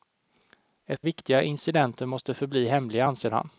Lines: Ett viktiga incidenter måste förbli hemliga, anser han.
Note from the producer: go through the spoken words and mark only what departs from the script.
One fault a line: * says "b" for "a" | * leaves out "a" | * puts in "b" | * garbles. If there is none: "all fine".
all fine